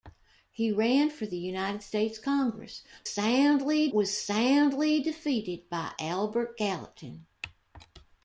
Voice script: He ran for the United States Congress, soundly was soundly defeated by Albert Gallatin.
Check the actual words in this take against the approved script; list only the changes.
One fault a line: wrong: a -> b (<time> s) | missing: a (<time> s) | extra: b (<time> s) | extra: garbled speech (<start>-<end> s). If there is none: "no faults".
no faults